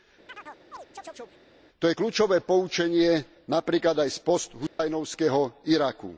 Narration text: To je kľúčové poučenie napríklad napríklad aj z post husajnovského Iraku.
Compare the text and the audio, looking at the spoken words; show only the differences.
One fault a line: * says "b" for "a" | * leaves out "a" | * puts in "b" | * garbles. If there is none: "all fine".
* leaves out "napríklad"